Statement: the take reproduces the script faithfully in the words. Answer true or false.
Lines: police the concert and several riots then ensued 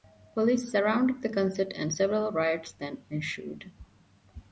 false